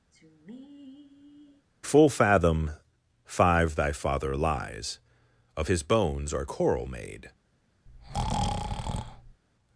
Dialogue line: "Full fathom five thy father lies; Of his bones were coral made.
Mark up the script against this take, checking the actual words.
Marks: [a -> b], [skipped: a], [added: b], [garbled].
"Full fathom five thy father lies; Of his bones [were -> are] coral made.